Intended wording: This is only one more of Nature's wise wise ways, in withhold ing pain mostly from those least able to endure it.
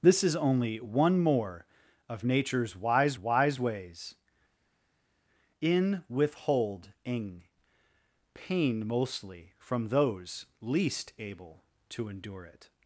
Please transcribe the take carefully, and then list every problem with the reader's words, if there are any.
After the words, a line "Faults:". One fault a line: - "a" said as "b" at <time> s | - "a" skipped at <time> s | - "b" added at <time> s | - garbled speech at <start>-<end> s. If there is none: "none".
This is only one more of Nature's wise wise ways, in withhold ing pain mostly from those least able to endure it.
Faults:
none